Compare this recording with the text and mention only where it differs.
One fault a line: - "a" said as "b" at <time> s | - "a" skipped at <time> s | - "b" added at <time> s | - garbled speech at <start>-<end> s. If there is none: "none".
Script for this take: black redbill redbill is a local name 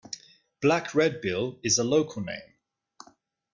- "redbill" skipped at 1.6 s